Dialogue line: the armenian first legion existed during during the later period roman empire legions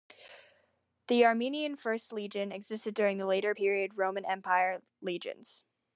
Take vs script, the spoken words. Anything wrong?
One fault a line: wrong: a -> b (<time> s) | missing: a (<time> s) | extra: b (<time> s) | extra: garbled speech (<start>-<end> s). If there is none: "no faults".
missing: during (3.2 s)